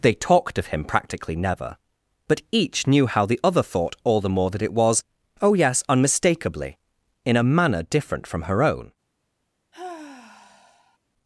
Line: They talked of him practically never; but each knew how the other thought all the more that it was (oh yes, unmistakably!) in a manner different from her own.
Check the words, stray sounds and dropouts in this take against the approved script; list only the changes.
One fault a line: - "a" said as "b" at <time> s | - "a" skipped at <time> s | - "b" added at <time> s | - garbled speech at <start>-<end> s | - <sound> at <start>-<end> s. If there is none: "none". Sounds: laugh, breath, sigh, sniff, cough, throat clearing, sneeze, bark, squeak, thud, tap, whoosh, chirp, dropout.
- sigh at 9.7-11.0 s